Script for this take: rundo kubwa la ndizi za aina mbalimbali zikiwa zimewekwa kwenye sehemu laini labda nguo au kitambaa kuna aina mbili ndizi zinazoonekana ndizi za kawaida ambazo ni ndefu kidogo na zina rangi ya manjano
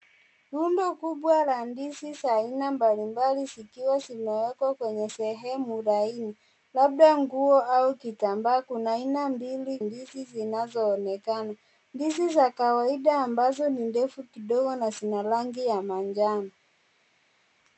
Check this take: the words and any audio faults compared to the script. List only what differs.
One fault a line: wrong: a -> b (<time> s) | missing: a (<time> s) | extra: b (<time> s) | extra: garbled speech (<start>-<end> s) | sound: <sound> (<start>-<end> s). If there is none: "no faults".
no faults